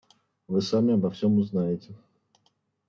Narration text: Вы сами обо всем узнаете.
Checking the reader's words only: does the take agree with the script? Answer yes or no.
yes